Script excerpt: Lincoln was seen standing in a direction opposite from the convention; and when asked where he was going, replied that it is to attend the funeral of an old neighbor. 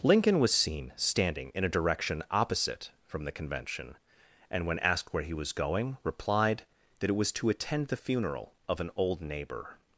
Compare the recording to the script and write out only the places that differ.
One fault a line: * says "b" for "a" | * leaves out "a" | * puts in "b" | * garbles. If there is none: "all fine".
* says "was" for "is"